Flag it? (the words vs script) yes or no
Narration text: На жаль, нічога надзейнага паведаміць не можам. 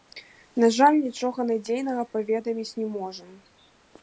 no